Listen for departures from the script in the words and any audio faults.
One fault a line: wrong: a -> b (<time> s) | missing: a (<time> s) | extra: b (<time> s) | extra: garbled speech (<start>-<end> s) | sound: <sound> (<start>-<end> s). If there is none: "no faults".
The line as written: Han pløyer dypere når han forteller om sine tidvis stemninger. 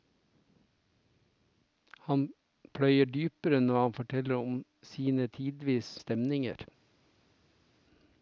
no faults